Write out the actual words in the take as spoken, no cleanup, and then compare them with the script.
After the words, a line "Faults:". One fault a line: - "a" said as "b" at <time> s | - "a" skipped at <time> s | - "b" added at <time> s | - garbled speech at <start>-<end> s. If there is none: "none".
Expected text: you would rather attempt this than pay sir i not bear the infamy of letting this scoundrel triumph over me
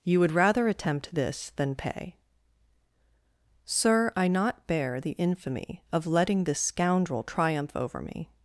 you would rather attempt this than pay sir i not bear the infamy of letting this scoundrel triumph over me
Faults:
none